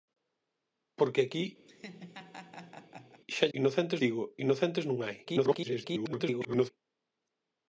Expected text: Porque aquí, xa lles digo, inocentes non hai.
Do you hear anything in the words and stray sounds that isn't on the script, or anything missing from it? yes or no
yes